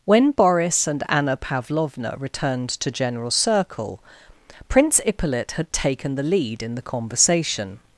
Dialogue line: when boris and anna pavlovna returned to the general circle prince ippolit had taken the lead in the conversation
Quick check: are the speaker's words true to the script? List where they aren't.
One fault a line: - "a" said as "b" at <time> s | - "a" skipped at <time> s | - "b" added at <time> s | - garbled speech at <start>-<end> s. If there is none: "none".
- "the" skipped at 2.9 s